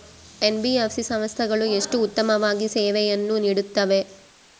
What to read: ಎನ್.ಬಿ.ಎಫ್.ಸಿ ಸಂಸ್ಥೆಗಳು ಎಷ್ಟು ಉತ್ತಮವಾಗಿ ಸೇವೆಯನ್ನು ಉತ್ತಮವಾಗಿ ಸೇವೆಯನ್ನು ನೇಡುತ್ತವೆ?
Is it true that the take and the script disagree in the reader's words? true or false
true